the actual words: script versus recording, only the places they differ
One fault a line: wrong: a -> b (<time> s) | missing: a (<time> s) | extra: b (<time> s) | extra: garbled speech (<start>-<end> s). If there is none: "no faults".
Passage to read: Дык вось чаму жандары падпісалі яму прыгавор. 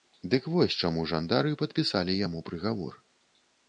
no faults